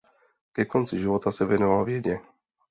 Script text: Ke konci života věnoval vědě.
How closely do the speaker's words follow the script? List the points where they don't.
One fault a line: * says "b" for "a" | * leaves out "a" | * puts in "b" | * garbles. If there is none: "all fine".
* puts in "se"